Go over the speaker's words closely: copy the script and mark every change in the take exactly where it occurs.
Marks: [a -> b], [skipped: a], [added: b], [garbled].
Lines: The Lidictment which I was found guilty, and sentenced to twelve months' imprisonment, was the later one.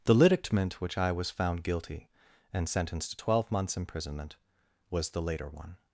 The Lidictment which I was found guilty, and sentenced to twelve months' imprisonment, was the later one.